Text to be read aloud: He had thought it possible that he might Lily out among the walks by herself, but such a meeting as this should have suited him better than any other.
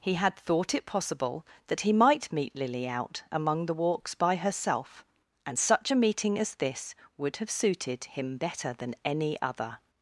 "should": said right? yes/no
no